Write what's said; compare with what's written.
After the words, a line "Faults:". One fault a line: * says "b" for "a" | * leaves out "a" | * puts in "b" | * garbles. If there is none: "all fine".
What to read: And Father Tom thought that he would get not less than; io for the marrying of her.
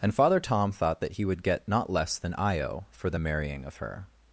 And Father Tom thought that he would get not less than; io for the marrying of her.
Faults:
all fine